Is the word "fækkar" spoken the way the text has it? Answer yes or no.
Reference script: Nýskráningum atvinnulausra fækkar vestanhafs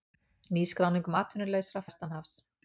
no